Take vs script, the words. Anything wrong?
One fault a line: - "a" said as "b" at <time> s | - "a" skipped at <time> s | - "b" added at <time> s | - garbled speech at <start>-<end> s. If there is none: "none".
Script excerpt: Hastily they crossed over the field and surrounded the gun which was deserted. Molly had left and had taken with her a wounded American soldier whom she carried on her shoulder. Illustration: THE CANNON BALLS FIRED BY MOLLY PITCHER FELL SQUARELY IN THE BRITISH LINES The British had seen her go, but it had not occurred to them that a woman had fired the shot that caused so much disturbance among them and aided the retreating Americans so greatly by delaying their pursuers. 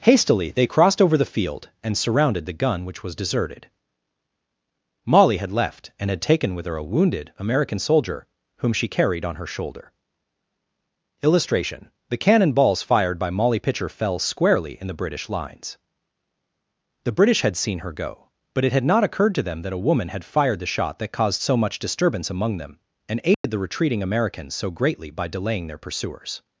none